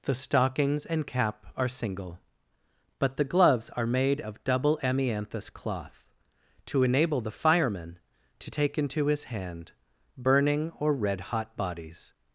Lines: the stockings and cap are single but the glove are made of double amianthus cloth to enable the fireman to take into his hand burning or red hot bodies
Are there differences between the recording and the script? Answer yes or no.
yes